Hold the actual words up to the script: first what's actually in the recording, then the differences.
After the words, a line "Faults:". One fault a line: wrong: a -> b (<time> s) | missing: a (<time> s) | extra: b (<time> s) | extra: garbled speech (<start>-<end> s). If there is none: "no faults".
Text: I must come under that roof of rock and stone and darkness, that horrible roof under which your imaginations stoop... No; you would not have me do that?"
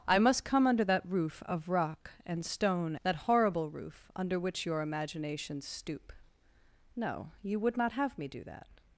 I must come under that roof of rock and stone that horrible roof under which your imaginations stoop... No; you would not have me do that?"
Faults:
missing: and darkness (3.0 s)